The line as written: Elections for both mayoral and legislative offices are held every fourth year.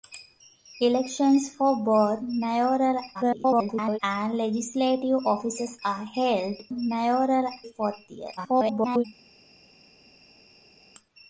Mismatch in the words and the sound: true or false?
true